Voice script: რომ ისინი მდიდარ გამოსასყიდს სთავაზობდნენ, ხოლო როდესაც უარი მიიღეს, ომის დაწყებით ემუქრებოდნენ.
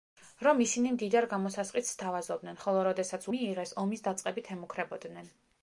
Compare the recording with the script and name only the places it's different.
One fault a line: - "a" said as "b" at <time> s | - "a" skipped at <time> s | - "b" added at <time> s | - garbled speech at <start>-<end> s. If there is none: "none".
- "უარი" skipped at 3.3 s